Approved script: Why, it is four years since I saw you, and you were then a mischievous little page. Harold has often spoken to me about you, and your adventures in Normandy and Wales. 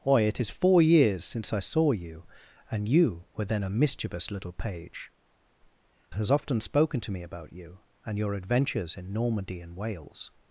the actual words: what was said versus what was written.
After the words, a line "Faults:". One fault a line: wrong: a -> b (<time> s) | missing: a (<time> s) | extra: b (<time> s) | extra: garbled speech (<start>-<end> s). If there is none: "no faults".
Why, it is four years since I saw you, and you were then a mischievous little page. Has often spoken to me about you, and your adventures in Normandy and Wales.
Faults:
missing: Harold (5.1 s)